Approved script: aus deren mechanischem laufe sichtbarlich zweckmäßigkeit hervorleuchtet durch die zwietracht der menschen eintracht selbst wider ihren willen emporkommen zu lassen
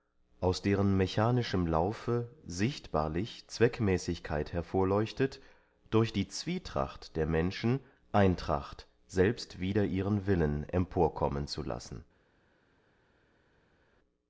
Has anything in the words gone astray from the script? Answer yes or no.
no